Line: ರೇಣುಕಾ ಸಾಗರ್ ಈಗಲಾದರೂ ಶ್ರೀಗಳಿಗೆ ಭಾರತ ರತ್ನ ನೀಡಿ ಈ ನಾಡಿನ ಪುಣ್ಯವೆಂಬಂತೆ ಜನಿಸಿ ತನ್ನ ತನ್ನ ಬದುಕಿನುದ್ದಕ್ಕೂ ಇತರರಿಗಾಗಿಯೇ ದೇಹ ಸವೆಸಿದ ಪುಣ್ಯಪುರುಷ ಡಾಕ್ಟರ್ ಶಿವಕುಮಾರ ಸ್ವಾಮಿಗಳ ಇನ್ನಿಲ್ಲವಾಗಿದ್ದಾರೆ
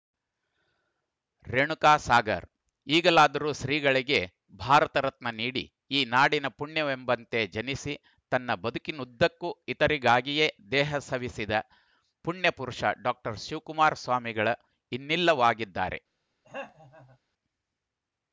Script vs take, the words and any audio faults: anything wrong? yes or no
yes